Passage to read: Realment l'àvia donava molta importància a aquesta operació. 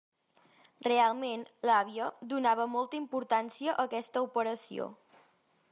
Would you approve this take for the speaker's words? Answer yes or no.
yes